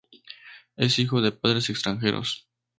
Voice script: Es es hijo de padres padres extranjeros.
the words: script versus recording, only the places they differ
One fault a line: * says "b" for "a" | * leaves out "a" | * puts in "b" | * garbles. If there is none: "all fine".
* leaves out "es"
* leaves out "padres"